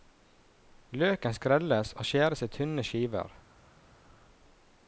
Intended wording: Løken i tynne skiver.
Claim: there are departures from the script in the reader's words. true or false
true